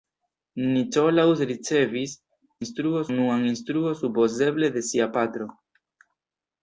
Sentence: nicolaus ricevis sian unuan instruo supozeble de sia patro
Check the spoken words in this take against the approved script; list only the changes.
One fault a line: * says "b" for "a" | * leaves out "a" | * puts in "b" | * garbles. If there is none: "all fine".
* says "instruo" for "sian"